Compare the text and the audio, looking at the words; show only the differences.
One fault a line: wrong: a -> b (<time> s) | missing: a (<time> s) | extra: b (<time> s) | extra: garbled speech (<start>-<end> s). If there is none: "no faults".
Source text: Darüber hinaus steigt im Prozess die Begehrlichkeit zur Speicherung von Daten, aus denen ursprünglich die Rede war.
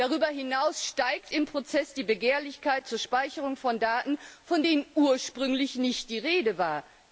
wrong: aus -> von (4.4 s)
extra: nicht (5.7 s)